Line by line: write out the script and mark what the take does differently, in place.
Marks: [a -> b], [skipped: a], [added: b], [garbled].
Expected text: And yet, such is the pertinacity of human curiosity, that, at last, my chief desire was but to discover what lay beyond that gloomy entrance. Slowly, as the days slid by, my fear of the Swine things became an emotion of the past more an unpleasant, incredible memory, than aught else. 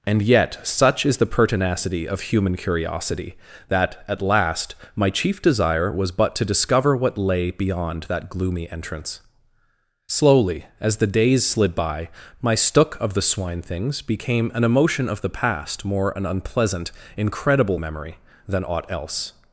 And yet, such is the pertinacity of human curiosity, that, at last, my chief desire was but to discover what lay beyond that gloomy entrance. Slowly, as the days slid by, my [fear -> stook] of the Swine things became an emotion of the past more an unpleasant, incredible memory, than aught else.